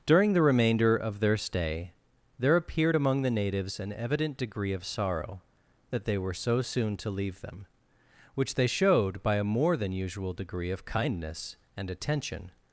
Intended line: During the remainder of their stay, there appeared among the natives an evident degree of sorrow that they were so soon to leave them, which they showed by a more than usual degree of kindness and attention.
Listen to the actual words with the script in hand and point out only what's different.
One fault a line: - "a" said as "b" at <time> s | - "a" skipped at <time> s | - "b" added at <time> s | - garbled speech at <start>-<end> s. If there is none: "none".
none